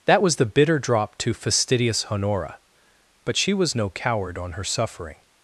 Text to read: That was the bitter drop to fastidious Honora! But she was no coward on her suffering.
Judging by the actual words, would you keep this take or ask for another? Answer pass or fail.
pass